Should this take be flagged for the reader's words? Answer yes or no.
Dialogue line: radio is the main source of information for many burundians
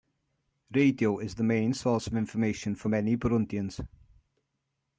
no